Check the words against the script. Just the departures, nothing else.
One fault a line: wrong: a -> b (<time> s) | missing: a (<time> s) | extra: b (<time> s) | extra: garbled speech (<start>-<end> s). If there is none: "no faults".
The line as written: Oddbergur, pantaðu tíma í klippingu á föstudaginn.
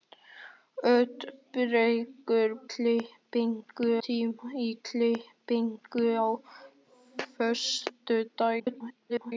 wrong: pantaðu -> klippingu (2.7 s)
extra: garbled speech (8.6-9.3 s)